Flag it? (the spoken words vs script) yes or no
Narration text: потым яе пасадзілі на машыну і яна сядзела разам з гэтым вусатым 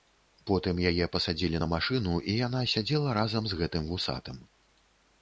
no